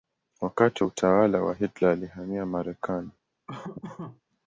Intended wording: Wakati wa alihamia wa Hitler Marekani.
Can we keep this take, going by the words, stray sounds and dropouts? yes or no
no